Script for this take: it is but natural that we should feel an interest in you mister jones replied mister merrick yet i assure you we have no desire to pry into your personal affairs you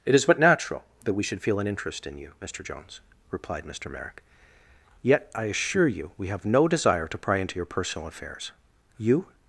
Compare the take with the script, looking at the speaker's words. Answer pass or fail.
pass